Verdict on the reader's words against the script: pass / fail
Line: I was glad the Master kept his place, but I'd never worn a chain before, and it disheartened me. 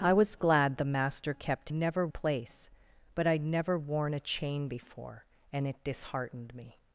fail